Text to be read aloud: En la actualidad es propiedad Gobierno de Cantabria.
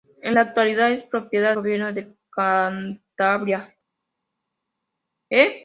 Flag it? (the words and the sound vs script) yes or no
no